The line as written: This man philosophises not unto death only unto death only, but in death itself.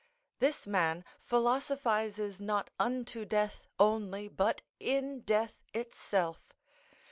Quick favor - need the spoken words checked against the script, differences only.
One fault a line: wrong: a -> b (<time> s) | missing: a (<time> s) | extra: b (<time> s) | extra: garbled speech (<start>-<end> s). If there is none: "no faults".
missing: unto death only (4.3 s)